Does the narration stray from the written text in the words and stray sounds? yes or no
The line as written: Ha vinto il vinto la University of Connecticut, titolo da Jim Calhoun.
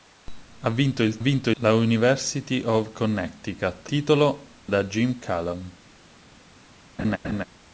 yes